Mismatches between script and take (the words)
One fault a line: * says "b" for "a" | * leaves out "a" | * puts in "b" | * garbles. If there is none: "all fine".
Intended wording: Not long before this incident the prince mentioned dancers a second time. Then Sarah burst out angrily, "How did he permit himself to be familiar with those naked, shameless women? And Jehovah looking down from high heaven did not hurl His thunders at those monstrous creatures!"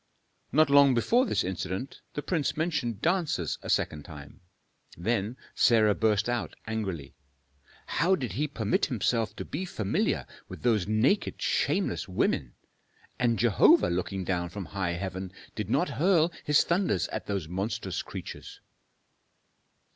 all fine